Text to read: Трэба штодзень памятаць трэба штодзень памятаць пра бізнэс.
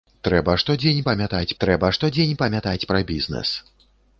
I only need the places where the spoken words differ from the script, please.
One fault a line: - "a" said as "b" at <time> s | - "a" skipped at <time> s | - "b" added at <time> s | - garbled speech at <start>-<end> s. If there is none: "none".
none